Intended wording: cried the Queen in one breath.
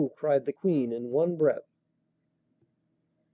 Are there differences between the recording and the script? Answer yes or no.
no